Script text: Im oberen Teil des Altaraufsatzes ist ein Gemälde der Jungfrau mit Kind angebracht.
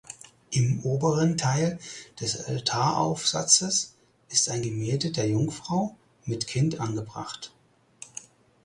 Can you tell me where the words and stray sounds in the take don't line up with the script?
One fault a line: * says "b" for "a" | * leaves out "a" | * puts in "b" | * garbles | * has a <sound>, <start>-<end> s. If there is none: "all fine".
all fine